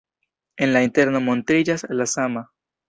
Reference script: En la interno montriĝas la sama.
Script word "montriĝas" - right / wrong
right